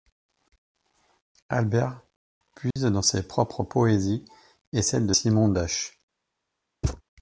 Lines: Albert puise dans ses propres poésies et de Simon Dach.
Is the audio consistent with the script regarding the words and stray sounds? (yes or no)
no